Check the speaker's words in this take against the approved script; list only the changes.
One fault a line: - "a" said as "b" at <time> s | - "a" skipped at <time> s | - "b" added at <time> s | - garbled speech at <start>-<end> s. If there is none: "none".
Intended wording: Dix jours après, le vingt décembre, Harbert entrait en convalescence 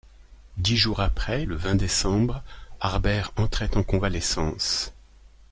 none